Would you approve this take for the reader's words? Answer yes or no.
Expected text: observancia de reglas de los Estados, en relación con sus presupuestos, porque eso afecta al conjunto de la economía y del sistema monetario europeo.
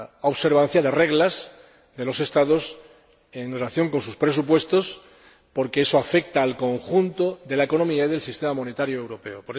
yes